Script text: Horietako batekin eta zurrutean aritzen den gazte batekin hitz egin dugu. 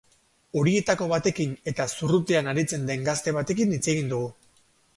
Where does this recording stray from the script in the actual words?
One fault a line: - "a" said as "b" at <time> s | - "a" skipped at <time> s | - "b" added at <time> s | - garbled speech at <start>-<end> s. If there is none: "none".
none